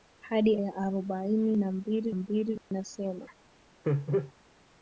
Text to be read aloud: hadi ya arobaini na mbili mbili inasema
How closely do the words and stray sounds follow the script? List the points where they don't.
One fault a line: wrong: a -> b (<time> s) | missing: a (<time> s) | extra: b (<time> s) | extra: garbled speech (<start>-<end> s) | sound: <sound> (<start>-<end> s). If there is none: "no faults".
sound: dropout (2.6-2.7 s)
sound: laugh (3.8-4.3 s)